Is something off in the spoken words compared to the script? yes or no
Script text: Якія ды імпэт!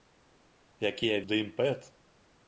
no